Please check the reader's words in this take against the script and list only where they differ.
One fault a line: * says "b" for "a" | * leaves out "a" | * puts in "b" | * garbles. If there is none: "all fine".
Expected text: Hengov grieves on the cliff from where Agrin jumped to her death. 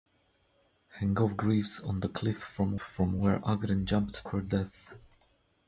* puts in "from"
* leaves out "to"